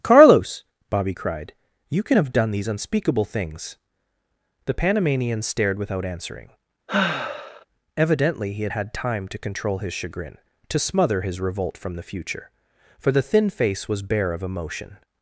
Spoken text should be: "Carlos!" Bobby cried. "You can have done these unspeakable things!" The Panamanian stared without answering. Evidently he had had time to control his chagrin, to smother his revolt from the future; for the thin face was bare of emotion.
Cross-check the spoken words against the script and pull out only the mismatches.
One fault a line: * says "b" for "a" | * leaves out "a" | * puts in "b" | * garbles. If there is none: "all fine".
all fine